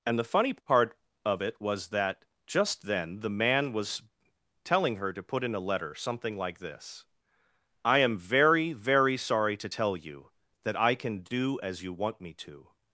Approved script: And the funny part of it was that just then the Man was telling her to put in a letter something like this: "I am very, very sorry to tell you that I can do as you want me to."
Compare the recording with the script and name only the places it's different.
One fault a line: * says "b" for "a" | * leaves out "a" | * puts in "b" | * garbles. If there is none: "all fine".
all fine